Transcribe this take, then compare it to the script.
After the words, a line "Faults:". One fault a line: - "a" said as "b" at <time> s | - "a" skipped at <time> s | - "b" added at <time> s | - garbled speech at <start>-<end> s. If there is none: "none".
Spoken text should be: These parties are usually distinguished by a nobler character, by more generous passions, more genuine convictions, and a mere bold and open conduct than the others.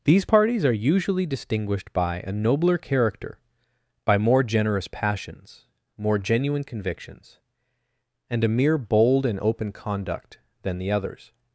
These parties are usually distinguished by a nobler character, by more generous passions, more genuine convictions, and a mere bold and open conduct than the others.
Faults:
none